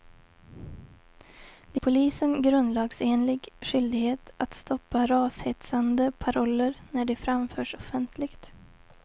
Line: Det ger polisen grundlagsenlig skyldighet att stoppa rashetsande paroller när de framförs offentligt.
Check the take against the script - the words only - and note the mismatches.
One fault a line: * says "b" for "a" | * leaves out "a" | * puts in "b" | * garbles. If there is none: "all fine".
* leaves out "ger"